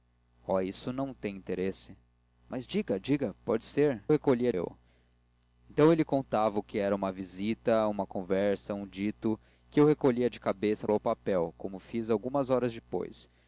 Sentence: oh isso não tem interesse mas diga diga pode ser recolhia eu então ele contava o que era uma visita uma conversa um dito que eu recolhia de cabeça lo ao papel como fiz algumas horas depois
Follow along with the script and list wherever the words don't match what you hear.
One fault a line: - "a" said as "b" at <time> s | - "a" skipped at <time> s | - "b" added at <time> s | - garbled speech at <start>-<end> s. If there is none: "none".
none